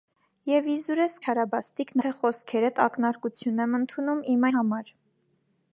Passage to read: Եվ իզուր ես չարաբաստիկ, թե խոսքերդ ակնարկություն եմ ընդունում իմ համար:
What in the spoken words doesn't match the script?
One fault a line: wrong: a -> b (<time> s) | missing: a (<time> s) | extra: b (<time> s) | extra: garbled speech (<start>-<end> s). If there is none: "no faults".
no faults